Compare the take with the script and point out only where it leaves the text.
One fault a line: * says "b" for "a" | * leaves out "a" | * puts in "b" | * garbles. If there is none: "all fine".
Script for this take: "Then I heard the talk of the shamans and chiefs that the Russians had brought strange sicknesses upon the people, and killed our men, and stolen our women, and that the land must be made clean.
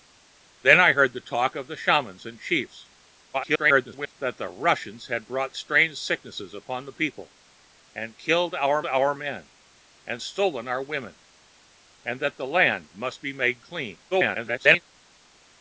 * garbles
* puts in "our"
* garbles